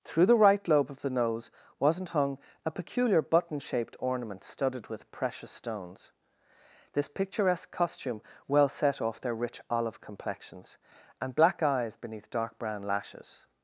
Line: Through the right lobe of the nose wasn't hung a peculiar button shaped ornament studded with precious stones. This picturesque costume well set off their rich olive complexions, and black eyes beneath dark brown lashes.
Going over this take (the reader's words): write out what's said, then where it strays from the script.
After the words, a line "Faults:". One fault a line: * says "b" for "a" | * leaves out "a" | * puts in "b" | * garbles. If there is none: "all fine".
Through the right lobe of the nose wasn't hung a peculiar button shaped ornament studded with precious stones. This picturesque costume well set off their rich olive complexions, and black eyes beneath dark brown lashes.
Faults:
all fine